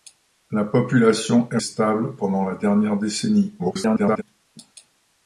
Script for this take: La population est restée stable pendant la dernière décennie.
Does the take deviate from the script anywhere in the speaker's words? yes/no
yes